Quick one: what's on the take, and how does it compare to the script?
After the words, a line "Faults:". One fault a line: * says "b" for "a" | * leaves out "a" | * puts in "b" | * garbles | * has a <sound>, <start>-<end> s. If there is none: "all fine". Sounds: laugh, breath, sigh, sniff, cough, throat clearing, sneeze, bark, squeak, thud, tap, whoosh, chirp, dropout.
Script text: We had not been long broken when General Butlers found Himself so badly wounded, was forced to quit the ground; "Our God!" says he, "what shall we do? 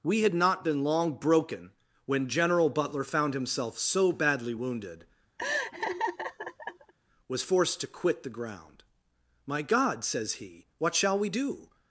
We had not been long broken when General Butler found Himself so badly wounded, was forced to quit the ground; "My God!" says he, "what shall we do?
Faults:
* says "Butler" for "Butlers"
* has a laugh, 5.4-6.9 s
* says "My" for "Our"